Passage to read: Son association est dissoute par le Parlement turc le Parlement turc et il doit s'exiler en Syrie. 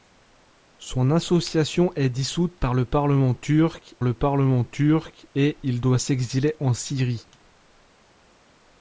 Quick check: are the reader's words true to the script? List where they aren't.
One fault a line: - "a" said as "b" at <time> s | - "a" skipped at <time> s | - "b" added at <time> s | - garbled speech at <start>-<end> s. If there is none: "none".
none